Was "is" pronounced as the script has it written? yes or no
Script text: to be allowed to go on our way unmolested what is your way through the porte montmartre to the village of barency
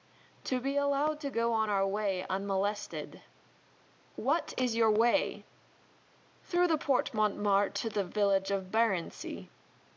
yes